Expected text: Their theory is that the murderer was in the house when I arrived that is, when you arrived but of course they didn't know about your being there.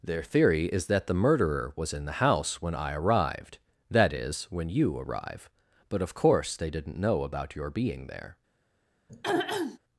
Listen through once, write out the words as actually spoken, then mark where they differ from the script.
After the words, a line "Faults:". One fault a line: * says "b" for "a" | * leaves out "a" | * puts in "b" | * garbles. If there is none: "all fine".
Their theory is that the murderer was in the house when I arrived that is, when you arrive but of course they didn't know about your being there.
Faults:
* says "arrive" for "arrived"